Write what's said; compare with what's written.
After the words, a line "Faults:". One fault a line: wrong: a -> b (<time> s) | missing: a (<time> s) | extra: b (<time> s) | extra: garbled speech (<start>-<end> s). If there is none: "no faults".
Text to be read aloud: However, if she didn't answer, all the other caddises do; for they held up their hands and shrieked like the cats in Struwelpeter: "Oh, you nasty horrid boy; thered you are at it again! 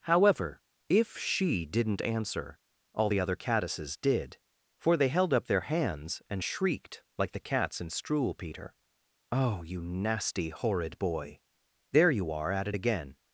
However, if she didn't answer, all the other caddises did; for they held up their hands and shrieked like the cats in Struwelpeter: "Oh, you nasty horrid boy; there you are at it again!
Faults:
wrong: do -> did (4.0 s)
wrong: thered -> there (11.9 s)